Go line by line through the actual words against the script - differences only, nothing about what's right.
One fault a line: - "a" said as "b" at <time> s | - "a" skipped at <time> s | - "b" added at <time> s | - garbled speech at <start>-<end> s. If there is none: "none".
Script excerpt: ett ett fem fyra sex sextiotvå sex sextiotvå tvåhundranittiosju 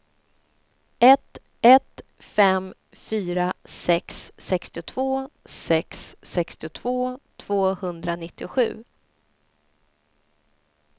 none